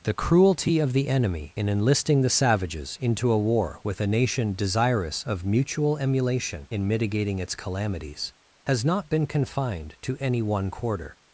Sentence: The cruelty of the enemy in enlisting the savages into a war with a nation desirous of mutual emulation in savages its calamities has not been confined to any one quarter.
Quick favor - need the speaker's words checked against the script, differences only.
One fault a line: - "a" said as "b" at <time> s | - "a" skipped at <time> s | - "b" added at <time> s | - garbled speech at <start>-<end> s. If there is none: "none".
- "savages" said as "mitigating" at 6.9 s